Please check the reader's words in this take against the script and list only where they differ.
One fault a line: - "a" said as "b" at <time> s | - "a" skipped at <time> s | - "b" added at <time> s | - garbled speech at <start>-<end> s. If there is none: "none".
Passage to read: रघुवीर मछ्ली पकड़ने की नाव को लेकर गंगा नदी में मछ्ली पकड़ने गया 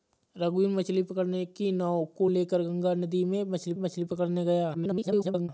- "मछ्ली" added at 3.8 s
- garbled speech at 4.7-5.5 s